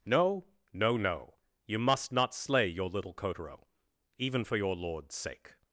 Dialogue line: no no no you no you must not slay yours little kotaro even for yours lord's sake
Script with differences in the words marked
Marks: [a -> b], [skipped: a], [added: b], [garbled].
no no no you [skipped: no you] must not slay [yours -> your] little kotaro even for [yours -> your] lord's sake